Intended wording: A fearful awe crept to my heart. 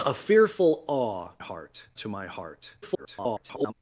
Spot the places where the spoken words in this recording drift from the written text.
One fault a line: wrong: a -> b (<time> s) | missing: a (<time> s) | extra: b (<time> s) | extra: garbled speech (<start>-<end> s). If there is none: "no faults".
wrong: crept -> heart (1.4 s)
extra: garbled speech (2.8-3.7 s)